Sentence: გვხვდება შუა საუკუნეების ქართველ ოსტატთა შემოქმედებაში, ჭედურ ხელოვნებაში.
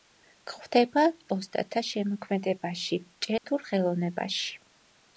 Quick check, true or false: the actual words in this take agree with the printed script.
false